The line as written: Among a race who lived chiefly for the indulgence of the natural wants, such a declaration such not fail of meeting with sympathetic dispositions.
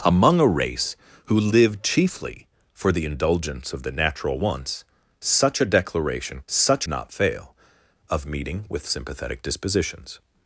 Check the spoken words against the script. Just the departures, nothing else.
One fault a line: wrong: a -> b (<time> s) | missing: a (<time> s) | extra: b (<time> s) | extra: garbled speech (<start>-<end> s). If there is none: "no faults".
no faults